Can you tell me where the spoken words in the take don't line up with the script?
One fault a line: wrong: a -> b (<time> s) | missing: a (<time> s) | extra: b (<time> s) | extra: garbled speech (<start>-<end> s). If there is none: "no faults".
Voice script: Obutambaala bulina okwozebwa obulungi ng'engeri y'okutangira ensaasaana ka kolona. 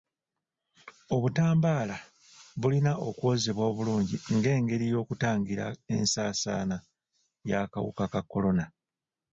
extra: y'akawuka (7.5 s)